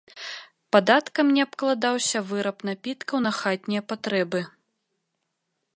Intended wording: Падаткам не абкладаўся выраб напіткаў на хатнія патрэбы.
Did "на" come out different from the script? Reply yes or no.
no